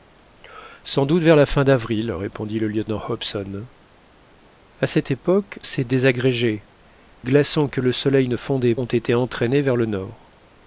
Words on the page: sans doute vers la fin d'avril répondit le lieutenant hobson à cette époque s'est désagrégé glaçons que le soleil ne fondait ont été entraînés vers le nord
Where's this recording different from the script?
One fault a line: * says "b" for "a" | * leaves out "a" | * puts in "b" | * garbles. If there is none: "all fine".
all fine